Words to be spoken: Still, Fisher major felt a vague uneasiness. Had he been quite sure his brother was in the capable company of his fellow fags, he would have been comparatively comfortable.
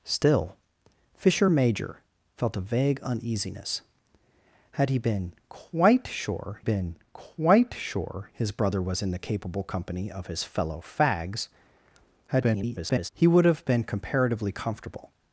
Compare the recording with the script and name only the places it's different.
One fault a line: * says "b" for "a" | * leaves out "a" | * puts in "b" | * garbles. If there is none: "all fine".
* puts in "been quite sure"
* garbles